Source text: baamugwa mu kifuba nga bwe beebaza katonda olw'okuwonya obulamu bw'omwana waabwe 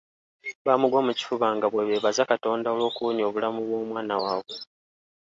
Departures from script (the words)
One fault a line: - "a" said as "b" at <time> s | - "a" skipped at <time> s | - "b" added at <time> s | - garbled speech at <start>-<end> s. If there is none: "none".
none